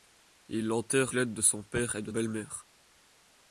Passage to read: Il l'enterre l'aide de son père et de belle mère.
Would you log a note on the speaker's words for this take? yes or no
no